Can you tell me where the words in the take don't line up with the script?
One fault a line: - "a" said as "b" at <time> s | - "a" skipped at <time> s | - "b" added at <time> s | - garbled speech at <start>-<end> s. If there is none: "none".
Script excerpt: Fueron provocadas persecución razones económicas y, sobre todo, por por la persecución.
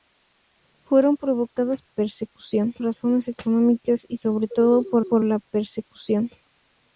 none